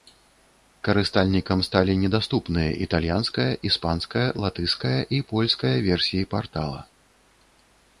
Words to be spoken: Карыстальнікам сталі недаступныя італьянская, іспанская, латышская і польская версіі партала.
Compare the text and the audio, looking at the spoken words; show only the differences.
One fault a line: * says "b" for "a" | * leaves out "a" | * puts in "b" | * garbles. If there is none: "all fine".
all fine